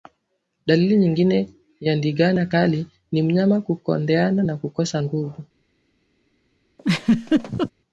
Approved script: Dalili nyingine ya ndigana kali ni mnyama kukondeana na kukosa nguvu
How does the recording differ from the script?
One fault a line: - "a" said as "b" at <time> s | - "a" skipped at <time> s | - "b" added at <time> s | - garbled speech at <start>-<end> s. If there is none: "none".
none